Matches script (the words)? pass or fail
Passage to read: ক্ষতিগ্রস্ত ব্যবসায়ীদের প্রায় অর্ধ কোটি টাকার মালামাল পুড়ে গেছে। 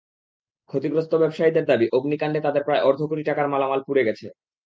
fail